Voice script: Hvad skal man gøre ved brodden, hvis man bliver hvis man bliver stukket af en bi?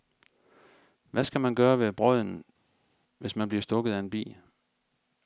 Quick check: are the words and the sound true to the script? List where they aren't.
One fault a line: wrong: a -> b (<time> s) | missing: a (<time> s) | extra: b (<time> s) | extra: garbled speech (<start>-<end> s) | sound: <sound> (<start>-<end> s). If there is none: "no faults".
missing: hvis man bliver (3.6 s)